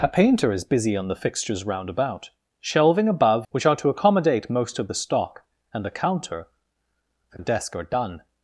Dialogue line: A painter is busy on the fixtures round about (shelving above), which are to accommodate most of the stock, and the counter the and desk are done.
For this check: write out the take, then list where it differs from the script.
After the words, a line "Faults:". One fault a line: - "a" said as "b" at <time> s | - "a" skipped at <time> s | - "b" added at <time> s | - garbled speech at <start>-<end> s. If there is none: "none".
A painter is busy on the fixtures round about (shelving above), which are to accommodate most of the stock, and the counter the and desk are done.
Faults:
none